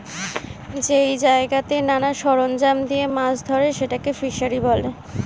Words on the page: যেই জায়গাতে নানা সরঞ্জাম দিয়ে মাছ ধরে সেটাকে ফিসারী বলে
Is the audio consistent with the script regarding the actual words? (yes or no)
yes